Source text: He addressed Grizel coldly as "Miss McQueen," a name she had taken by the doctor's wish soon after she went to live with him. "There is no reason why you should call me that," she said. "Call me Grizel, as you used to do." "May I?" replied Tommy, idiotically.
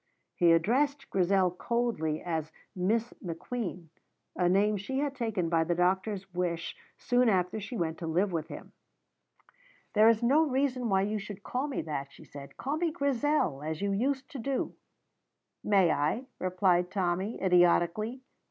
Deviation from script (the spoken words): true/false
false